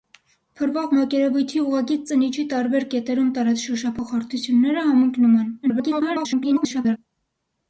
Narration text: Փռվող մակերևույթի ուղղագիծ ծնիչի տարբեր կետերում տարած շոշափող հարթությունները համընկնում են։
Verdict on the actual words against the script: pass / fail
fail